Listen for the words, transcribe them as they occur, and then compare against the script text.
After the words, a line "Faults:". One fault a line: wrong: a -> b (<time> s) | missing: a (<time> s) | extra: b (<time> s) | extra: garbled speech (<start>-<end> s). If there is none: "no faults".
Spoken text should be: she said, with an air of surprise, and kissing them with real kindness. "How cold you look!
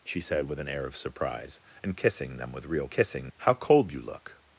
she said, with an air of surprise, and kissing them with real kissing. "How cold you look!
Faults:
wrong: kindness -> kissing (2.9 s)